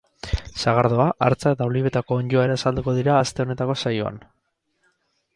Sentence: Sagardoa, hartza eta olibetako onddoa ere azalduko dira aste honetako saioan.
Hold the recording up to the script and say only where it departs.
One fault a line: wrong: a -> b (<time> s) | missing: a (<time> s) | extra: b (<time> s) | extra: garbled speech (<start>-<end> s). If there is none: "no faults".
no faults